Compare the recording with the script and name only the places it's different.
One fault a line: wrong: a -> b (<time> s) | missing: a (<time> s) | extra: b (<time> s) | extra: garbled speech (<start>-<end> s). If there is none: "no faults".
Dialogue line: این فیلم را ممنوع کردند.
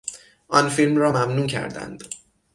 wrong: این -> آن (0.5 s)